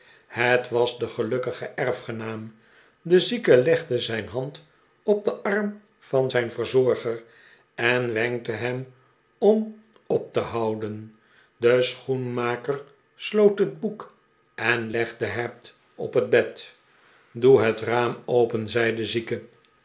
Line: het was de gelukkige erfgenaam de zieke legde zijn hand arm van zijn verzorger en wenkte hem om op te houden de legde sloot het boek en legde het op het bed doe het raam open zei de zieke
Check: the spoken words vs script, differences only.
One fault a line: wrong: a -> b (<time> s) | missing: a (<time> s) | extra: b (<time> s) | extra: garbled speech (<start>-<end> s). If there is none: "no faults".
extra: op den (5.0 s)
wrong: legde -> schoenmaker (11.8 s)